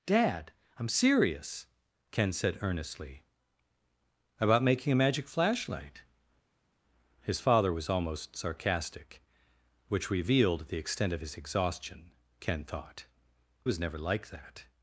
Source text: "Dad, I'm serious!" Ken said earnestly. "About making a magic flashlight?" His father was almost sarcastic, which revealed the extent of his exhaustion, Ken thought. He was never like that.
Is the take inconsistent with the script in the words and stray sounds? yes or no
yes